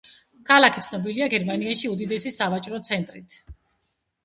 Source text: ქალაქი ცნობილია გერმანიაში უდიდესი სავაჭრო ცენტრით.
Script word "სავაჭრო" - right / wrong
right